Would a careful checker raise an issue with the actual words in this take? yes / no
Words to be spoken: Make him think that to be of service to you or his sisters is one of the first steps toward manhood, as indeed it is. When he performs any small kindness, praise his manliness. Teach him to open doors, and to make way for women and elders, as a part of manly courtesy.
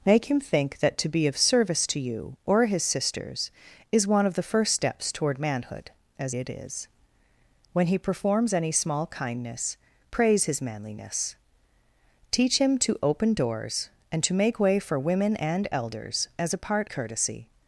yes